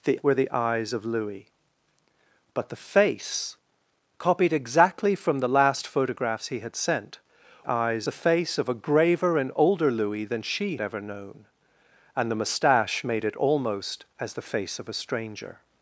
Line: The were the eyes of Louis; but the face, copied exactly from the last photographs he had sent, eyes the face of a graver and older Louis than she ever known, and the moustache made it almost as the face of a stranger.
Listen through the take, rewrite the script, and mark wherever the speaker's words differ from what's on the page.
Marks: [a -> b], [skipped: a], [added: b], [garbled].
The were the eyes of Louis; but the face, copied exactly from the last photographs he had sent, eyes the face of a graver and older Louis than she ever known, and the moustache made it almost as the face of a stranger.